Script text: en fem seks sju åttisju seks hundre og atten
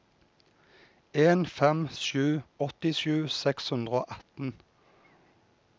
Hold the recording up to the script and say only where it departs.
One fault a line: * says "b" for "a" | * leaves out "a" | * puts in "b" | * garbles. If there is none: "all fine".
* leaves out "seks"